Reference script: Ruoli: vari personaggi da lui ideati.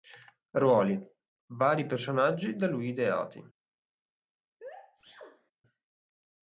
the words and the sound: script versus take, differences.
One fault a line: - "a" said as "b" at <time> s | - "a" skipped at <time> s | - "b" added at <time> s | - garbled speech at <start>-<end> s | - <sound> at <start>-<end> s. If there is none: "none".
- sneeze at 4.6-5.5 s